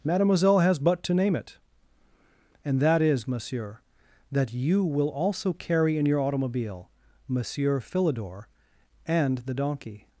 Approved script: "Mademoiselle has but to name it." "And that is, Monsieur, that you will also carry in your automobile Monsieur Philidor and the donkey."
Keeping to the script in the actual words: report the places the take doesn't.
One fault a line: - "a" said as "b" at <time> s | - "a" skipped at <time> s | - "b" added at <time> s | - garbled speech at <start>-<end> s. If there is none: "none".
none